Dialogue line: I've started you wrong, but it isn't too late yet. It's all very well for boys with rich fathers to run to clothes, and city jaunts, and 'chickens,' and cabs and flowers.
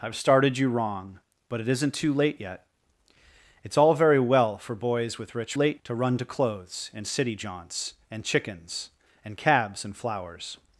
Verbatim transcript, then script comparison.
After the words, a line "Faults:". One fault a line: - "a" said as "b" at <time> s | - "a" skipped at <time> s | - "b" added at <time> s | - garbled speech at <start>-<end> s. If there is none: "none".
I've started you wrong, but it isn't too late yet. It's all very well for boys with rich late to run to clothes, and city jaunts, and 'chickens,' and cabs and flowers.
Faults:
- "fathers" said as "late" at 5.5 s